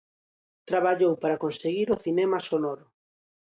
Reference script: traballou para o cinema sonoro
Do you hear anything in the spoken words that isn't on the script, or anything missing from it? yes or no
yes